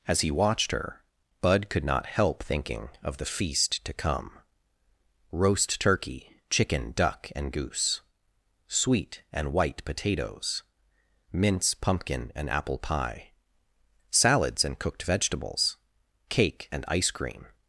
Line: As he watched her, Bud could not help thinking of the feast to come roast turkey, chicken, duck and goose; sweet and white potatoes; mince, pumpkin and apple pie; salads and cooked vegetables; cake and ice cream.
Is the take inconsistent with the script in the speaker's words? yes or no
no